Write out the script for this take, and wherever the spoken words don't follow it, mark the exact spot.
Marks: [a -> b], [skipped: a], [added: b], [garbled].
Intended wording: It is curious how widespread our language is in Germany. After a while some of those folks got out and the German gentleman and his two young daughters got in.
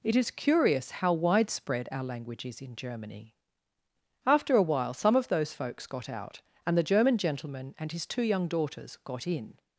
It is curious how widespread our language is in Germany. After a while some of those folks got out and the German gentleman and his two young daughters got in.